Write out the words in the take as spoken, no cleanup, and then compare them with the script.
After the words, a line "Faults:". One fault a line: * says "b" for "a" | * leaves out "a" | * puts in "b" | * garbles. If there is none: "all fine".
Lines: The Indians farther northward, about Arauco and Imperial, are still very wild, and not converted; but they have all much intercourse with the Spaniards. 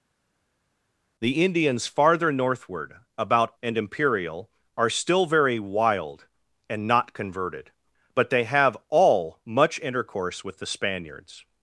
The Indians farther northward, about And Imperial, are still very wild, and not converted; but they have all much intercourse with the Spaniards.
Faults:
* leaves out "Arauco"